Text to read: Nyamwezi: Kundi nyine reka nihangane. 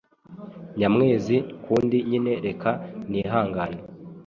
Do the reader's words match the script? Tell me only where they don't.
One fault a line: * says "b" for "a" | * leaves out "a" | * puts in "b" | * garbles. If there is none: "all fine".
all fine